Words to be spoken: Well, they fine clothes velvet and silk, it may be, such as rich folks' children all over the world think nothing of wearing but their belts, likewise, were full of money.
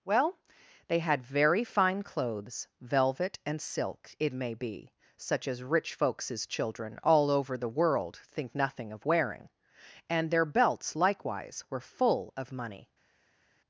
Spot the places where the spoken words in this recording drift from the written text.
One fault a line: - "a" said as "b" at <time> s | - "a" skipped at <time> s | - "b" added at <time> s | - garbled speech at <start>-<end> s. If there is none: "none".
- "had very" added at 1.0 s
- "but" said as "and" at 10.1 s